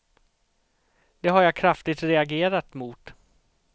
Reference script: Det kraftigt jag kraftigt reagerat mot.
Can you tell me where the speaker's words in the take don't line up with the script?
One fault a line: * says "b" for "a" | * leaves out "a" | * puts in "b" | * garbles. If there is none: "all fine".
* says "har" for "kraftigt"